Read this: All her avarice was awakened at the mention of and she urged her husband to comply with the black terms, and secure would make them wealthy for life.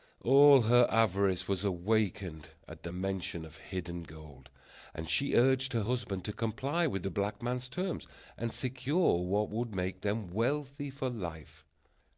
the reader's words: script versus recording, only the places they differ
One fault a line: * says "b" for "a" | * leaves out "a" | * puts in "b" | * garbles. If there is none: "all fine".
* puts in "hidden gold"
* puts in "man's"
* puts in "what"